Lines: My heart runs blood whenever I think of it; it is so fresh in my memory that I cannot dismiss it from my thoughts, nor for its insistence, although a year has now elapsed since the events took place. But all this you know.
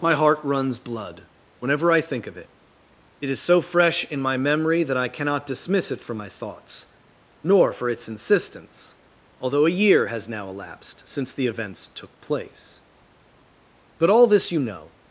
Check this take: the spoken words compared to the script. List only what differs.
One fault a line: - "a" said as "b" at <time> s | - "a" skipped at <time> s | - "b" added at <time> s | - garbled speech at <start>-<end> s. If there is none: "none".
none